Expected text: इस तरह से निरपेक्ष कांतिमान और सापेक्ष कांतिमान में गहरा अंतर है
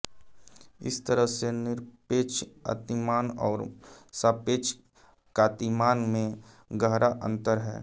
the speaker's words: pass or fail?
pass